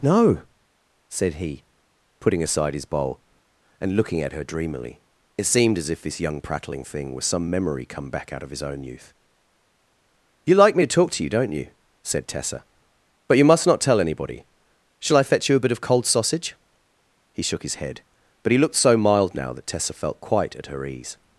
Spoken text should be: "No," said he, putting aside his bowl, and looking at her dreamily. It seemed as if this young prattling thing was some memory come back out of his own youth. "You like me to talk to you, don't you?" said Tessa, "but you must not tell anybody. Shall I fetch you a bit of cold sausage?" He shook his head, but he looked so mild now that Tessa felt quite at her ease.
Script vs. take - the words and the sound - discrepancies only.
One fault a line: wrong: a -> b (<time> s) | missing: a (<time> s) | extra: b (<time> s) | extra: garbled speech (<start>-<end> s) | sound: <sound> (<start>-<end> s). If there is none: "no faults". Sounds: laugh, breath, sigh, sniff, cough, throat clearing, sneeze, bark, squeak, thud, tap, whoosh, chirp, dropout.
no faults